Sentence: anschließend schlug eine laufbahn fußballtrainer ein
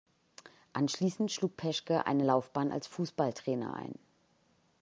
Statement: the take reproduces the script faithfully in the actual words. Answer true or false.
false